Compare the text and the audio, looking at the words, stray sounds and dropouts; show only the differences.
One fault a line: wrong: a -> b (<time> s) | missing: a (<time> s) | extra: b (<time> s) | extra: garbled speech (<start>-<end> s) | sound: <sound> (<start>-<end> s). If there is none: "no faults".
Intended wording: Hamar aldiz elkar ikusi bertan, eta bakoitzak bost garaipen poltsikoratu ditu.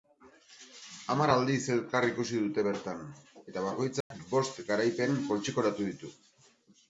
extra: dute (2.4 s)
sound: dropout (4.0-4.1 s)